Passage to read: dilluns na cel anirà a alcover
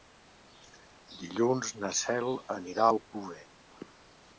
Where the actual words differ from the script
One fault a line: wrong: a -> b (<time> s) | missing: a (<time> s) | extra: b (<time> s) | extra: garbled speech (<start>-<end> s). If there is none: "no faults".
no faults